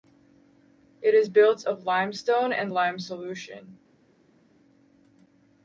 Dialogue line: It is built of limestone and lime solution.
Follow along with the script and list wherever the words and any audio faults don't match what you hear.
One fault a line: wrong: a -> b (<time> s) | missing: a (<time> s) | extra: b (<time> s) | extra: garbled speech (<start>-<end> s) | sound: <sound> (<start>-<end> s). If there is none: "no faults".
no faults